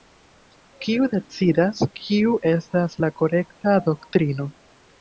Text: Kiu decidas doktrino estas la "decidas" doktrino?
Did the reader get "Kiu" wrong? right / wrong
right